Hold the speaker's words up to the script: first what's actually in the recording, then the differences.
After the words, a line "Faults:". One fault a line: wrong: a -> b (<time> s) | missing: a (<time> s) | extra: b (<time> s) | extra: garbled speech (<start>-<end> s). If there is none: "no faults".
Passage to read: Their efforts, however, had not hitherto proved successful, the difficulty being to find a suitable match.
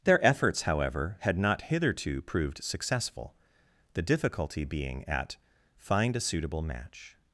Their efforts, however, had not hitherto proved successful, the difficulty being at find a suitable match.
Faults:
wrong: to -> at (5.1 s)